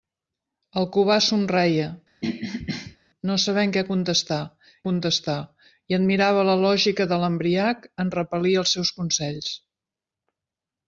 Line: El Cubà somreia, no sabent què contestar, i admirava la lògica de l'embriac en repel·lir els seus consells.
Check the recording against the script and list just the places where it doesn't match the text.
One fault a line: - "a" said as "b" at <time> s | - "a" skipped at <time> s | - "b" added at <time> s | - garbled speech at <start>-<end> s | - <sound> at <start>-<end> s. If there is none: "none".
- throat clearing at 2.2-3.0 s
- "contestar" added at 4.9 s